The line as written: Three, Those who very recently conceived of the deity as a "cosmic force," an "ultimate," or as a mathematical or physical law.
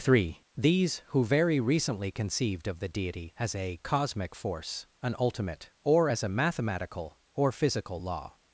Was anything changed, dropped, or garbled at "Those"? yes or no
yes